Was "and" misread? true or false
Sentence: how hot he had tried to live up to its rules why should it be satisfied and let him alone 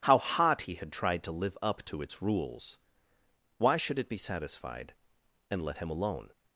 false